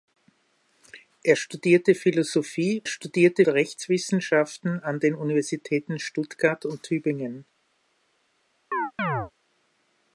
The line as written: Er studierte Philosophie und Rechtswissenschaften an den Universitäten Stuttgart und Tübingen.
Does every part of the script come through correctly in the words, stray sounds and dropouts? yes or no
no